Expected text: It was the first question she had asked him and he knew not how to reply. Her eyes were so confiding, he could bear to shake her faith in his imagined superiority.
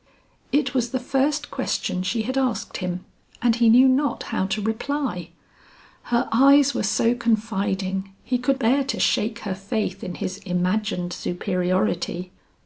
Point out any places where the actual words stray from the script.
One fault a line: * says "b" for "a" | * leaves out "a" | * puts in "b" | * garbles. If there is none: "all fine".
all fine